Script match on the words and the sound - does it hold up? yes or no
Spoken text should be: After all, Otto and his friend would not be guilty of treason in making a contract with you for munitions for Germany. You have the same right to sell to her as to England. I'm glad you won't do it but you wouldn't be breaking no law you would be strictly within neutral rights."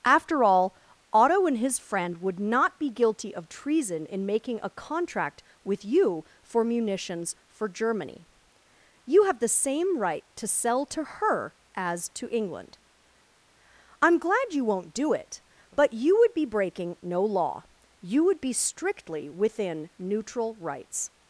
no